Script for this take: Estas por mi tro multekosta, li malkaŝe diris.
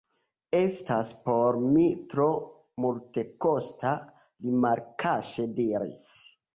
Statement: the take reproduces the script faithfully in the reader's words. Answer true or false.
true